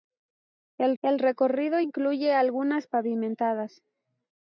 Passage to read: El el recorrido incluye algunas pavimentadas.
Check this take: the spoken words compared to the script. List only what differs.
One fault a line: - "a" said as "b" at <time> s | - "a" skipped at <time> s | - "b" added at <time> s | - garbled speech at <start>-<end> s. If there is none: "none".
none